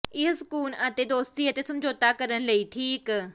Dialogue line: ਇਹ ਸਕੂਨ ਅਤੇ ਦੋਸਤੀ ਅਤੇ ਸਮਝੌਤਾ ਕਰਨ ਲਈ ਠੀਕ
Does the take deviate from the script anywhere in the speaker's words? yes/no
no